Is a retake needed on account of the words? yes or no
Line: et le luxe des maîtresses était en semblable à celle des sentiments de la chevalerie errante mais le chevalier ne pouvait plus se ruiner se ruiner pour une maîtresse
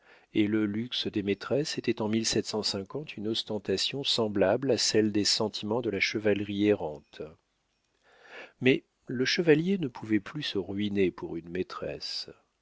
yes